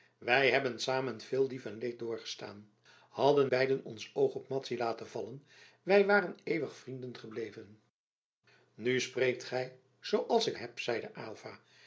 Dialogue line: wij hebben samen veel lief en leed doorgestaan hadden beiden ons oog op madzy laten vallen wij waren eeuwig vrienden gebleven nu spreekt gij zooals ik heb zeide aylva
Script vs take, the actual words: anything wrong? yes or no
no